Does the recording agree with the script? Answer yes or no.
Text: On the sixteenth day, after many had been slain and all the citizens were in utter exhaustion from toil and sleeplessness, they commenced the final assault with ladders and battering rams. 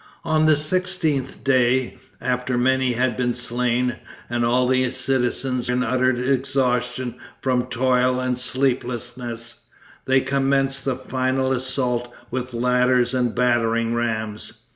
no